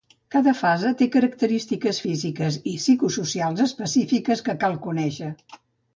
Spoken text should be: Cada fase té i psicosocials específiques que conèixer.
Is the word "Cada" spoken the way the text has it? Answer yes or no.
yes